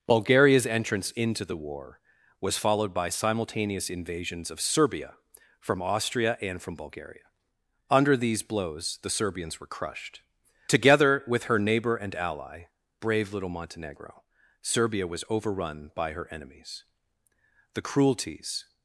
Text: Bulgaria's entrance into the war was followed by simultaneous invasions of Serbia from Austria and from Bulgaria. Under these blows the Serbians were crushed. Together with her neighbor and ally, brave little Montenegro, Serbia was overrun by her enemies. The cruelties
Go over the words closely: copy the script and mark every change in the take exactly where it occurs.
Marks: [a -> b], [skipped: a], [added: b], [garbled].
Bulgaria's entrance into the war was followed by simultaneous invasions of Serbia from Austria and from Bulgaria. Under these blows the Serbians were crushed. Together with her neighbor and ally, brave little Montenegro, Serbia was overrun by her enemies. The cruelties